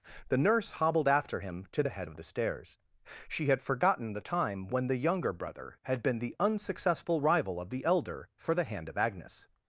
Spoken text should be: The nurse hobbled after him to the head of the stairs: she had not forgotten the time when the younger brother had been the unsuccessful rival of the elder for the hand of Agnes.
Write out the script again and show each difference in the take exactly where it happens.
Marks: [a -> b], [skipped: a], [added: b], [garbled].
The nurse hobbled after him to the head of the stairs: she had [skipped: not] forgotten the time when the younger brother had been the unsuccessful rival of the elder for the hand of Agnes.